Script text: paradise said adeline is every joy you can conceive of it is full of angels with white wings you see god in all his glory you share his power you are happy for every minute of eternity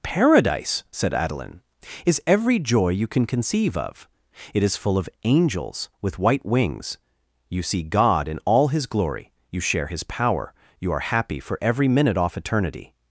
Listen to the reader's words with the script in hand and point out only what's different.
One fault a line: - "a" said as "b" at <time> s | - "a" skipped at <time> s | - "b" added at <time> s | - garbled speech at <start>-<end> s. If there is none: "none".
- "of" said as "off" at 12.2 s